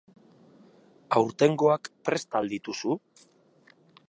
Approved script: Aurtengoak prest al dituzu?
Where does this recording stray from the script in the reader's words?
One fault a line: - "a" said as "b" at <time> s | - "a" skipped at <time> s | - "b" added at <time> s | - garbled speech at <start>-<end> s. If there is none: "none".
none